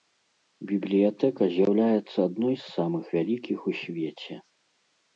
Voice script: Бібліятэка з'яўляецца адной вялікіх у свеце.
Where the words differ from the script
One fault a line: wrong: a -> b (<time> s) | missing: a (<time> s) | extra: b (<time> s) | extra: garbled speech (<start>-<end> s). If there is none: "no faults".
extra: з самых (2.6 s)